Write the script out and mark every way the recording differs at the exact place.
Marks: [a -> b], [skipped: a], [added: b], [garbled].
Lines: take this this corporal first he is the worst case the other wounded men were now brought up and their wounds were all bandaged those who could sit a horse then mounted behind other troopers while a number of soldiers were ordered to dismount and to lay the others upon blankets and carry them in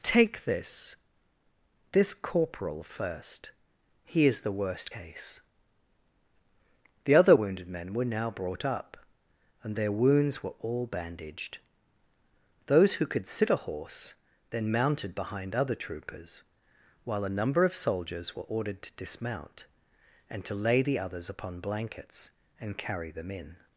take this this corporal first he is the worst case the other wounded men were now brought up and their wounds were all bandaged those who could sit a horse then mounted behind other troopers while a number of soldiers were ordered to dismount and to lay the others upon blankets and carry them in